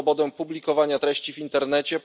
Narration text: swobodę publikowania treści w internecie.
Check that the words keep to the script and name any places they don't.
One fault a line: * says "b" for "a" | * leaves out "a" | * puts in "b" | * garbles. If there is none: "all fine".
all fine